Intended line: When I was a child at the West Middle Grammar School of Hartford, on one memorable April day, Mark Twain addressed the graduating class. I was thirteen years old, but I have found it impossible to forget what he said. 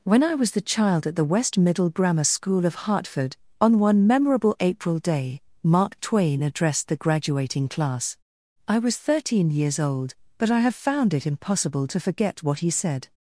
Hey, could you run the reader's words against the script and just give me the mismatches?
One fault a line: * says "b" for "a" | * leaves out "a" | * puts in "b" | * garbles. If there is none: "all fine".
* says "the" for "a"